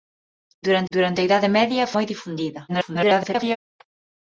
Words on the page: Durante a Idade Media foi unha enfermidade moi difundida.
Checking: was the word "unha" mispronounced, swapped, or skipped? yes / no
yes